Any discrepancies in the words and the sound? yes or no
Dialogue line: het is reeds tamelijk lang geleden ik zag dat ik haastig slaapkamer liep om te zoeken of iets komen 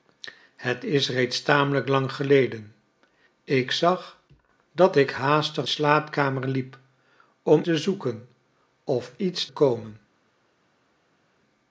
no